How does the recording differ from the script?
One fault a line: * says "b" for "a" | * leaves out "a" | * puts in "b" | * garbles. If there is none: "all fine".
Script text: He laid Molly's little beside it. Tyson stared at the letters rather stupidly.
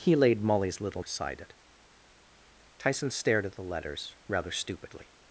all fine